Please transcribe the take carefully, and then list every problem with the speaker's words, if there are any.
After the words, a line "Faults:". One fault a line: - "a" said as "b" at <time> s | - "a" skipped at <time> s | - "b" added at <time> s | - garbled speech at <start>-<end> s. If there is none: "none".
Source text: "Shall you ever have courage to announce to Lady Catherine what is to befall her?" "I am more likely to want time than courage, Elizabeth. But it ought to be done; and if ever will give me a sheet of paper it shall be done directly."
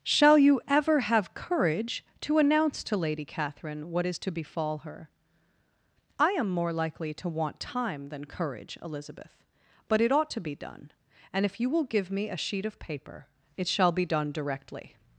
"Shall you ever have courage to announce to Lady Catherine what is to befall her?" "I am more likely to want time than courage, Elizabeth. But it ought to be done; and if you will give me a sheet of paper it shall be done directly."
Faults:
- "ever" said as "you" at 11.6 s